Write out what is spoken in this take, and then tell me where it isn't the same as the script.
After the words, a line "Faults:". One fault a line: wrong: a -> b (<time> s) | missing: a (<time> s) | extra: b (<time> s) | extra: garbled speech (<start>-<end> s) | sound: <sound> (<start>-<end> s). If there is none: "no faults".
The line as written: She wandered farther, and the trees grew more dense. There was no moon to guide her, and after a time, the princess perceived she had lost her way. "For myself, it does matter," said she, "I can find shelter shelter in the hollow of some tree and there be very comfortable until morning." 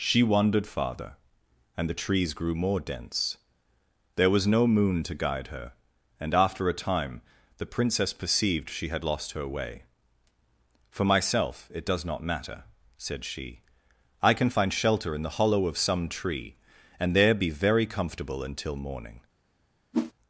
She wandered farther, and the trees grew more dense. There was no moon to guide her, and after a time, the princess perceived she had lost her way. "For myself, it does not matter," said she, "I can find shelter in the hollow of some tree and there be very comfortable until morning."
Faults:
extra: not (12.0 s)
missing: shelter (15.2 s)
sound: whoosh (19.9-20.1 s)